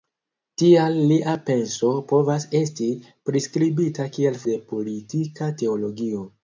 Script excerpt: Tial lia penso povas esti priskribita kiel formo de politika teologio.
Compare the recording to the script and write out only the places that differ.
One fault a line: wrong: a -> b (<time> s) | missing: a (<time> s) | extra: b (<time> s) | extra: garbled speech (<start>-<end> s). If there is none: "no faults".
missing: formo (4.4 s)